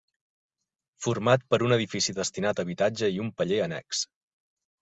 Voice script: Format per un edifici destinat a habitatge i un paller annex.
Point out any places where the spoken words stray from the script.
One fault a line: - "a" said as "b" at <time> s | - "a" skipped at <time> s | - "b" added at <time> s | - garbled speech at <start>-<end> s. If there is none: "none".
none